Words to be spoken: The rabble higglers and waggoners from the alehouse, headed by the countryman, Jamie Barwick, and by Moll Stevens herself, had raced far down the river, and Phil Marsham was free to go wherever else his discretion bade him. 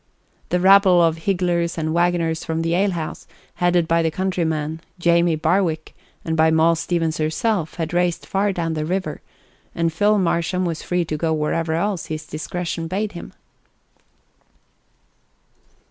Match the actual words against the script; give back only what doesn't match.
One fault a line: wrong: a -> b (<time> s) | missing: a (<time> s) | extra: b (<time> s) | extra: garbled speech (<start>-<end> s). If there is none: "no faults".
extra: of (1.0 s)